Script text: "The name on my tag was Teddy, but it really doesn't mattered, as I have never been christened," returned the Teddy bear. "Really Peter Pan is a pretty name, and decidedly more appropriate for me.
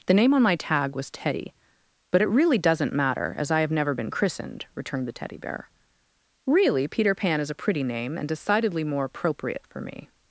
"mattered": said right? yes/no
no